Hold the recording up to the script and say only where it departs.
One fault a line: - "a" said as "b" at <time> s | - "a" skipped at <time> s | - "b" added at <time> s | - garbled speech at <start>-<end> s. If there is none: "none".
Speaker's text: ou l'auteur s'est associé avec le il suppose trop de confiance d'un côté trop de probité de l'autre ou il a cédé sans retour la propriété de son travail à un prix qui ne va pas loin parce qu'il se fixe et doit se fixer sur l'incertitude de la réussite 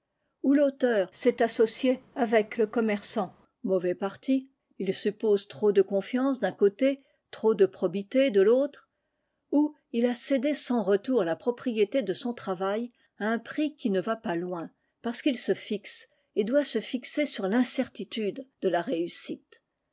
- "commerçant mauvais parti" added at 2.6 s